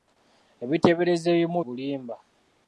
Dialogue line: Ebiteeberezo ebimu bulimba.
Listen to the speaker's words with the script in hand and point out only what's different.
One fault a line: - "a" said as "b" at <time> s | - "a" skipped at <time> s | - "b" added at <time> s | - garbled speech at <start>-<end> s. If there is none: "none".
none